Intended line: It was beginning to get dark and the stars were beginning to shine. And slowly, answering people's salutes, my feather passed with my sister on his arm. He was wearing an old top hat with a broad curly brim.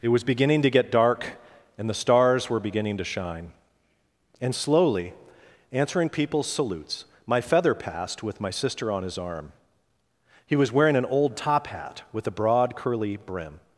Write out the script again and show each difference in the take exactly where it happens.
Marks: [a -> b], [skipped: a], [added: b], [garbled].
It was beginning to get dark and the stars were beginning to shine. And slowly, answering people's salutes, my feather passed with my sister on his arm. He was wearing an old top hat with a broad curly brim.